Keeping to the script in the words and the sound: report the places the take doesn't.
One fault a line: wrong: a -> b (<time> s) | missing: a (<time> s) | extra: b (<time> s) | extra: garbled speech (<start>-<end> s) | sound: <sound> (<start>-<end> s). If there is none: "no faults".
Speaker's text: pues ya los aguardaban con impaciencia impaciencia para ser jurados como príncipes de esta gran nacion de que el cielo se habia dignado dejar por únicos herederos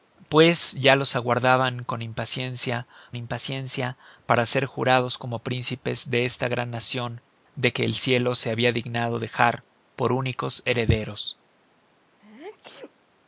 sound: sneeze (12.2-12.9 s)